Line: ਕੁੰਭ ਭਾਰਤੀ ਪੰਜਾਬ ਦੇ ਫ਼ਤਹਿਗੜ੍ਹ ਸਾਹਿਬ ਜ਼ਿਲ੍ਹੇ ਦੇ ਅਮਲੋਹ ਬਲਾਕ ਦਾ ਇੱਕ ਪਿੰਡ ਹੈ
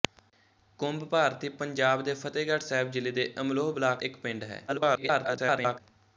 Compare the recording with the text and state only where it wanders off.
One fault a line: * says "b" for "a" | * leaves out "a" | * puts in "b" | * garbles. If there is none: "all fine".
* leaves out "ਦਾ"
* garbles